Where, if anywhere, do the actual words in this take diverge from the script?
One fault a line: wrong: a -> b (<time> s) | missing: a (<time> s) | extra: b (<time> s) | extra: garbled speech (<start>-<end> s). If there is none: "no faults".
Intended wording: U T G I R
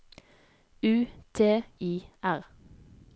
missing: G (1.6 s)